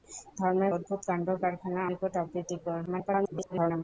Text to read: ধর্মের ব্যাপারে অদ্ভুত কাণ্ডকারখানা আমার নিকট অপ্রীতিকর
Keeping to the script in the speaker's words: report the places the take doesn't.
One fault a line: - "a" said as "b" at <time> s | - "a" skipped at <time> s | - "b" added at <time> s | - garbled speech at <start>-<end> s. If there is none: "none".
- "ব্যাপারে" skipped at 0.7 s
- "আমার" skipped at 1.8 s
- garbled speech at 2.9-3.8 s